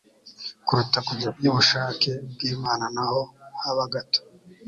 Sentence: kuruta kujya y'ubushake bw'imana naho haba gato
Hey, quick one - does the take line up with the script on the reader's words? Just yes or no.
yes